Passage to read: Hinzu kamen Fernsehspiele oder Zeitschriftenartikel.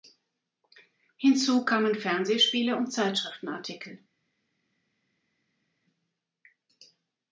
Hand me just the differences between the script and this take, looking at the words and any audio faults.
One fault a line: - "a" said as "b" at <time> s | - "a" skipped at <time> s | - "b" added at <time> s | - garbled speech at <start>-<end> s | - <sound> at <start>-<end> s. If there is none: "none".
- "oder" said as "und" at 2.7 s